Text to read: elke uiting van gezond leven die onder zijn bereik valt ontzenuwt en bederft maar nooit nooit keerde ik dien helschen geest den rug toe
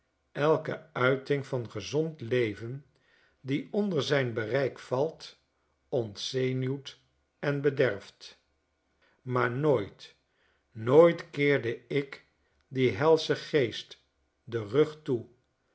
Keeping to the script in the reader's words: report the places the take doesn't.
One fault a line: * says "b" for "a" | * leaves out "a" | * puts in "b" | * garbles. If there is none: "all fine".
all fine